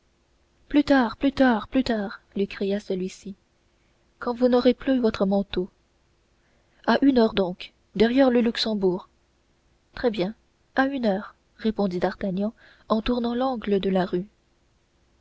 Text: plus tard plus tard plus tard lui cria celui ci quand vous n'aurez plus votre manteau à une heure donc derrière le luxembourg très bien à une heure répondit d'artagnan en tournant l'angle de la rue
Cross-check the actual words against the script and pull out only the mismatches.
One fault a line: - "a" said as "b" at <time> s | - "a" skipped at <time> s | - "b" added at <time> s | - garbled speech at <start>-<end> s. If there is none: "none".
none